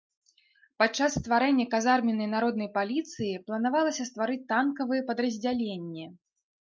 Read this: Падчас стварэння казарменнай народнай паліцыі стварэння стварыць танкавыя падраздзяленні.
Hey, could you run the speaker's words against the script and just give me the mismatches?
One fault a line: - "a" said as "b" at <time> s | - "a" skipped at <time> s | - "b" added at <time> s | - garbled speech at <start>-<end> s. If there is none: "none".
- "стварэння" said as "планавалася" at 3.5 s